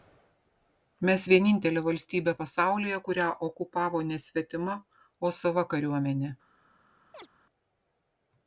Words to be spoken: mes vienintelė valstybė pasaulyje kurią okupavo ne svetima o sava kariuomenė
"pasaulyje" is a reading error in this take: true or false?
false